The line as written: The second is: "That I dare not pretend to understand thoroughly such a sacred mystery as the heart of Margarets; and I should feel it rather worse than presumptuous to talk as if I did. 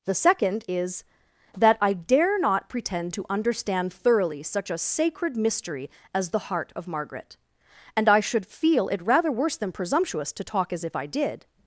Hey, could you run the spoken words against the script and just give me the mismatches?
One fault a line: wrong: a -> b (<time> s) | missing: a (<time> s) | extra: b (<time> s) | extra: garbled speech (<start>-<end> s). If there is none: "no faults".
wrong: Margarets -> Margaret (6.9 s)